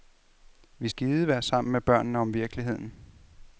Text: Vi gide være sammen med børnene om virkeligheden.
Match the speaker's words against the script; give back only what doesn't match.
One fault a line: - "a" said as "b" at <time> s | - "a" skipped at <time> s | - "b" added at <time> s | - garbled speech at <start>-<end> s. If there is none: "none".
none